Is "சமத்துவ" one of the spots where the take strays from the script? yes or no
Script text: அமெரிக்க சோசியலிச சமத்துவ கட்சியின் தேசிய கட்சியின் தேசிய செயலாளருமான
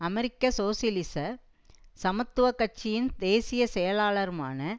no